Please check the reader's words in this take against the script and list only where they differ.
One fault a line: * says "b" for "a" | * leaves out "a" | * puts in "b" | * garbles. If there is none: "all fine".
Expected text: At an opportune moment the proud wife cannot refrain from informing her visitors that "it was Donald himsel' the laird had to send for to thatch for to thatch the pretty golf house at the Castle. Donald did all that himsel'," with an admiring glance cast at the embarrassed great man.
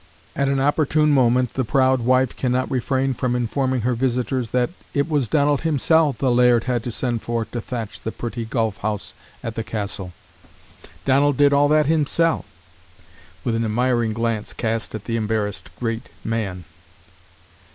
* leaves out "for to thatch"